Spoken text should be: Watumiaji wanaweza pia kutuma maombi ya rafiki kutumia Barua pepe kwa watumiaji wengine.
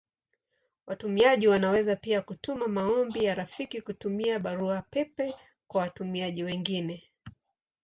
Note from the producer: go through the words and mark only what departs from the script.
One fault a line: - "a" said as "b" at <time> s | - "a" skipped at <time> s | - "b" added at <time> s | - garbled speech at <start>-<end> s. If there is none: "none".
none